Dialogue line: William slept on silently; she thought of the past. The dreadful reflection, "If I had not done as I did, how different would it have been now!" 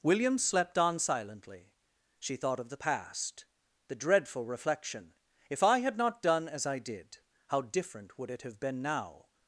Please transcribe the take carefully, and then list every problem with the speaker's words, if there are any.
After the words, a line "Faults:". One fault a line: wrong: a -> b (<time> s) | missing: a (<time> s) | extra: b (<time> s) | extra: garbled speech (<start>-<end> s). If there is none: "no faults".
William slept on silently; she thought of the past. The dreadful reflection, "If I had not done as I did, how different would it have been now!"
Faults:
no faults